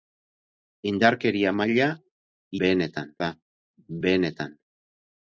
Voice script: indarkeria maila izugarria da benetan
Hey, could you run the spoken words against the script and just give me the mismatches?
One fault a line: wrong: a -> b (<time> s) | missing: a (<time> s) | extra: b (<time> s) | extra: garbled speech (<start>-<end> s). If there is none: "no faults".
wrong: izugarria -> benetan (2.6 s)